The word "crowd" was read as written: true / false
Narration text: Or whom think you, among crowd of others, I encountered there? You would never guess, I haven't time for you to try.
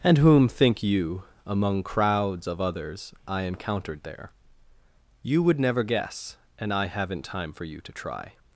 false